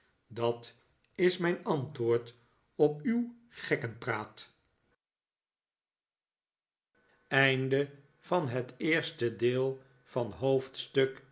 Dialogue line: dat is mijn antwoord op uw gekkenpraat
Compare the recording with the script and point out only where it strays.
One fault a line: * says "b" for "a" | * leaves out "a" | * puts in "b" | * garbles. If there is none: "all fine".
all fine